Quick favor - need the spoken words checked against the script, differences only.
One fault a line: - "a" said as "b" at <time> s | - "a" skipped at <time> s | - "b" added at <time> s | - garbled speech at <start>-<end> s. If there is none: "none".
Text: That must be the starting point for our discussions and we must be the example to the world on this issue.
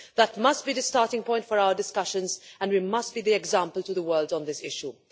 none